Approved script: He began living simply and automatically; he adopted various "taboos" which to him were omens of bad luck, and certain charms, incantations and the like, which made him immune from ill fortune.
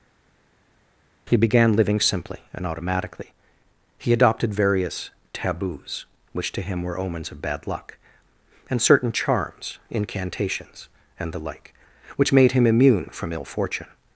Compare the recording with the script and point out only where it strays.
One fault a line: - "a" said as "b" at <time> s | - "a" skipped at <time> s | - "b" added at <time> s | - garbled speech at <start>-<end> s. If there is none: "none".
none